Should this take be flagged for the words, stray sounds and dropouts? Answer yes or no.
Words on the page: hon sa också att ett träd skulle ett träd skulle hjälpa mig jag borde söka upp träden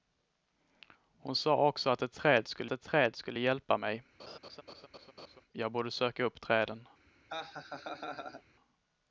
yes